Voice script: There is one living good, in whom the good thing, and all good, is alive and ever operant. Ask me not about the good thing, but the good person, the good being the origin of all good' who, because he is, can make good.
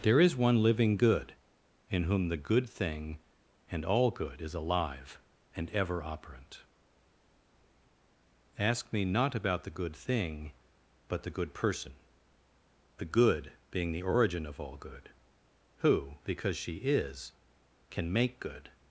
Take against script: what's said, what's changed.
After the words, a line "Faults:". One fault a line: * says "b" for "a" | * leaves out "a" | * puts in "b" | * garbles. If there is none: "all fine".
There is one living good, in whom the good thing, and all good, is alive and ever operant. Ask me not about the good thing, but the good person, the good being the origin of all good' who, because she is, can make good.
Faults:
* says "she" for "he"